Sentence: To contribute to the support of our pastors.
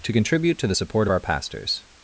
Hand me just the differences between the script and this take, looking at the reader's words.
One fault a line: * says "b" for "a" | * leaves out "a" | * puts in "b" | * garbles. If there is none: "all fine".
all fine